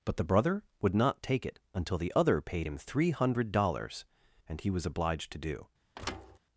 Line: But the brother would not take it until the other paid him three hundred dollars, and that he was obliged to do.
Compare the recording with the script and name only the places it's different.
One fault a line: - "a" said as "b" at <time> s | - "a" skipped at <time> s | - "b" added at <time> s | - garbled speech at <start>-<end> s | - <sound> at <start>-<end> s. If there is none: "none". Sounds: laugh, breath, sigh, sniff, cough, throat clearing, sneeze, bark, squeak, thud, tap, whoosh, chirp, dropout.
- "that" skipped at 4.6 s
- thud at 5.9-6.4 s